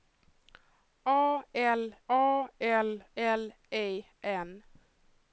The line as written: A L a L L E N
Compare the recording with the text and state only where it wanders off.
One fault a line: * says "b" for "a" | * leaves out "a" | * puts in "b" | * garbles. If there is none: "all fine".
all fine